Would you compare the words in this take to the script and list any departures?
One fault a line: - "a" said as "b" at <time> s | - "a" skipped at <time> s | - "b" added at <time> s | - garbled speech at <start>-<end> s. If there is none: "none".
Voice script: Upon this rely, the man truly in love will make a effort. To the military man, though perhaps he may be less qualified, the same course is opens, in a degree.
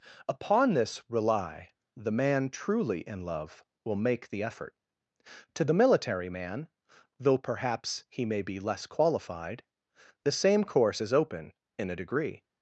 - "a" said as "the" at 4.3 s
- "opens" said as "open" at 11.1 s